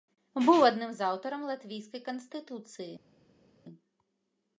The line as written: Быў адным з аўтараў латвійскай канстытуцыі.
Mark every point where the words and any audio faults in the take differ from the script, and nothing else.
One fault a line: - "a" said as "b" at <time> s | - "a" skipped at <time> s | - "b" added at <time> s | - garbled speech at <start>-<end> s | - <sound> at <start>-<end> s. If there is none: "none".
none